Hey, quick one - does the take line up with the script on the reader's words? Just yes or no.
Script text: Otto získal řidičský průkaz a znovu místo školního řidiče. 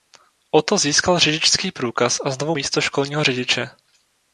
yes